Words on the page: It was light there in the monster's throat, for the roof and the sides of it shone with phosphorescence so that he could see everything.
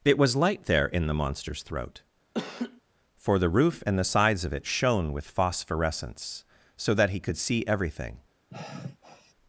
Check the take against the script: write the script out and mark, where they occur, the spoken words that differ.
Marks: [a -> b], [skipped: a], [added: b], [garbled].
It was light there in the monster's throat, for the roof and the sides of it shone with phosphorescence so that he could see everything.